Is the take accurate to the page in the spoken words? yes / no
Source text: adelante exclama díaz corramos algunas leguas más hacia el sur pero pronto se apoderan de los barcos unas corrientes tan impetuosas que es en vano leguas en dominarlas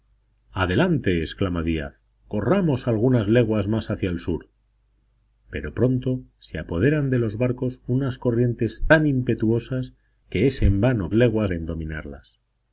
yes